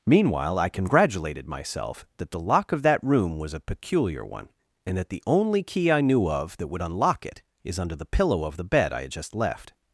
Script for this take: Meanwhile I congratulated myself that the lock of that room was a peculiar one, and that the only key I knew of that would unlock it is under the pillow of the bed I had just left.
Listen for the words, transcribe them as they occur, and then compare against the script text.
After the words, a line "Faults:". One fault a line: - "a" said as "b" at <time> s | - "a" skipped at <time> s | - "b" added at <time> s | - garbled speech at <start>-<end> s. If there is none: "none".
Meanwhile I congratulated myself that the lock of that room was a peculiar one, and that the only key I knew of that would unlock it is under the pillow of the bed I had just left.
Faults:
none